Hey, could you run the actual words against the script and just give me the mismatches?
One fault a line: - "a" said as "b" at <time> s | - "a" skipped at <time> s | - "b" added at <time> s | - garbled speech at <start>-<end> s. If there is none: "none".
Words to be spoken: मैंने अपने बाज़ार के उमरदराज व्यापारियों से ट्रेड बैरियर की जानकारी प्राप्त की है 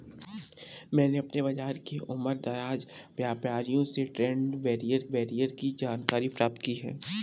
- "बैरियर" added at 5.1 s